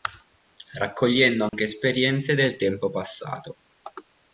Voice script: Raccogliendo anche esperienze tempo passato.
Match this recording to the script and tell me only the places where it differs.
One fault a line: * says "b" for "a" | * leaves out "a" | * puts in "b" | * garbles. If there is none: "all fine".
* puts in "del"